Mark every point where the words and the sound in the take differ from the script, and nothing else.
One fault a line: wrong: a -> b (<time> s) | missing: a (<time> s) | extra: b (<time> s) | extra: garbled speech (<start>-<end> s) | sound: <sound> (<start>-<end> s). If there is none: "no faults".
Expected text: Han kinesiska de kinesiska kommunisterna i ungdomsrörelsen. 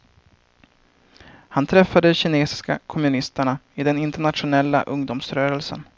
wrong: kinesiska -> träffade (1.6 s)
extra: den internationella (3.8 s)